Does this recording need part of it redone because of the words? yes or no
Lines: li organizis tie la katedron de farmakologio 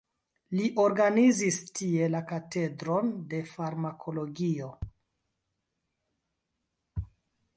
no